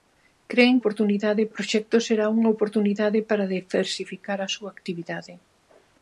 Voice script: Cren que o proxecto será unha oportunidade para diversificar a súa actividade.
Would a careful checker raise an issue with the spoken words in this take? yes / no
yes